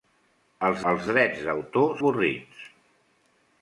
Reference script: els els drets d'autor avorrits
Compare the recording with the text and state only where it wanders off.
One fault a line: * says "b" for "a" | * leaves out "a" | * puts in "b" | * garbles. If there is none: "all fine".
all fine